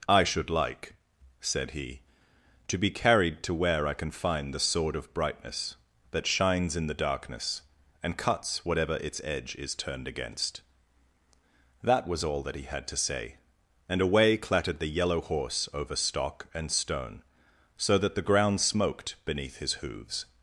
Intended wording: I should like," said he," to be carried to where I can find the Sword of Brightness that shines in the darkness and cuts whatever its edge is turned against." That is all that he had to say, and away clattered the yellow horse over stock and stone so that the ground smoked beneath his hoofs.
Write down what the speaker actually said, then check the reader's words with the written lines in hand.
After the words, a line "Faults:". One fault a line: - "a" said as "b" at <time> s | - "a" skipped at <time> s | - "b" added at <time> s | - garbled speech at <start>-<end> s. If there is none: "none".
I should like," said he," to be carried to where I can find the Sword of Brightness that shines in the darkness and cuts whatever its edge is turned against." That was all that he had to say, and away clattered the yellow horse over stock and stone so that the ground smoked beneath his hoofs.
Faults:
- "is" said as "was" at 12.1 s